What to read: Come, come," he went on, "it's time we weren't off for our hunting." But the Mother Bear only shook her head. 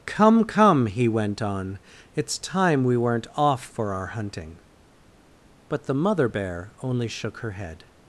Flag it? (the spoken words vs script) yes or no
no